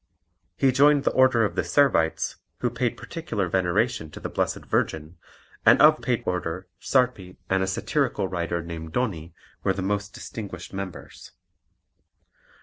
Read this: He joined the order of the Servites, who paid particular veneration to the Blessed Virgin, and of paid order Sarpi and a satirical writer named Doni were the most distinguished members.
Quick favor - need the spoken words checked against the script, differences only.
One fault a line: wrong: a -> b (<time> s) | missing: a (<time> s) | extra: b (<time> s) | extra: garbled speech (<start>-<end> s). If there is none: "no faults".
no faults